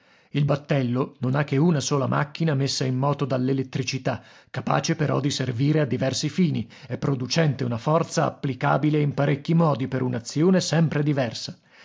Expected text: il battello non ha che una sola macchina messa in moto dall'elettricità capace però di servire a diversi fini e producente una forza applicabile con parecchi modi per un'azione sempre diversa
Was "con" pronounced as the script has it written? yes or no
no